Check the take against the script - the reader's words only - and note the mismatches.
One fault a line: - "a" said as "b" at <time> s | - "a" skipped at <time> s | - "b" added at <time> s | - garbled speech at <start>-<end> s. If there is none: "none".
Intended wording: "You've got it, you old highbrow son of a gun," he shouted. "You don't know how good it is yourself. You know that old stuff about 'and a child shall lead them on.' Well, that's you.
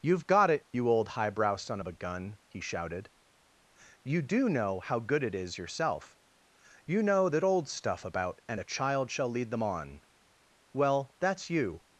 - "don't" said as "do" at 4.2 s